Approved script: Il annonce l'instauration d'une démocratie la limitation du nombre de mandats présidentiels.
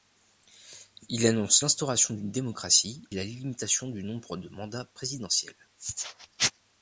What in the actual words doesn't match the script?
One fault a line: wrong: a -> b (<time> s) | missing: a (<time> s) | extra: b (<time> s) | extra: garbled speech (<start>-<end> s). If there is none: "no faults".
no faults